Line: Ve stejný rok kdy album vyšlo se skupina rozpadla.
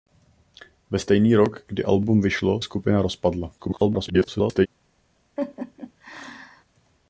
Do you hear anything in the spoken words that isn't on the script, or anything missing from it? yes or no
yes